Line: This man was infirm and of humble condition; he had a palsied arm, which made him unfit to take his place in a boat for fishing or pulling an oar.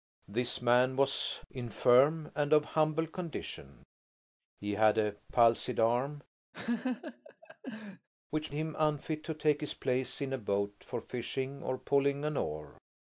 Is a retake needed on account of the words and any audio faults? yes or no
yes